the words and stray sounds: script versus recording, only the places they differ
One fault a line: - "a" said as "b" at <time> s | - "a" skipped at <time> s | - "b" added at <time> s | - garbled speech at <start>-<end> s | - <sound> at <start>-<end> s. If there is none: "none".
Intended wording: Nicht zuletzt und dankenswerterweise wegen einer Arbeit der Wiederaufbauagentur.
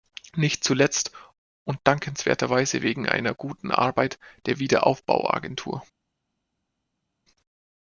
- "guten" added at 3.3 s